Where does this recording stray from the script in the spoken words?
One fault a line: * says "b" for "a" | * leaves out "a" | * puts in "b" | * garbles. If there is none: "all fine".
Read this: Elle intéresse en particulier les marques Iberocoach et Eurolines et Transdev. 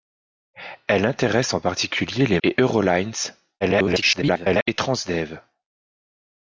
* leaves out "marques Iberocoach"
* garbles